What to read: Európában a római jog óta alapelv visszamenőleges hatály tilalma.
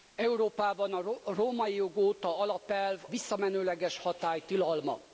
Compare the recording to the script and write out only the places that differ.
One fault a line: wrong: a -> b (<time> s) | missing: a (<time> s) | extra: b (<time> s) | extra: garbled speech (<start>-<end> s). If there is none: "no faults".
no faults